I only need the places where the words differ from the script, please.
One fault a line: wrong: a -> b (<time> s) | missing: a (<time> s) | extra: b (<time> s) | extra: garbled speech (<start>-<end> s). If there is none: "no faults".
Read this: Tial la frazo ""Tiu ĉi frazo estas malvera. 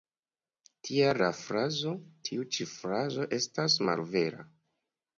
no faults